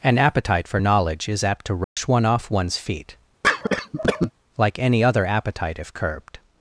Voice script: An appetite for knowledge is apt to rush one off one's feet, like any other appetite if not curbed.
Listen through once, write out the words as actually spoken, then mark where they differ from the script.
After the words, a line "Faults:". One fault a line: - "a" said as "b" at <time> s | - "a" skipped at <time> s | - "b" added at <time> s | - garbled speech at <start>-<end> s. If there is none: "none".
An appetite for knowledge is apt to rush one off one's feet, like any other appetite if curbed.
Faults:
- "not" skipped at 5.9 s